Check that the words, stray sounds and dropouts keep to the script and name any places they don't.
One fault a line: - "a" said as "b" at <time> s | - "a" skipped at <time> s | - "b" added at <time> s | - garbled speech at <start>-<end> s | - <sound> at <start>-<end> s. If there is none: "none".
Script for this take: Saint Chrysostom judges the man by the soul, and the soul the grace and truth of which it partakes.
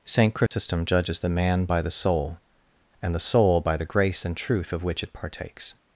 - dropout at 0.5-0.5 s
- "by" added at 3.6 s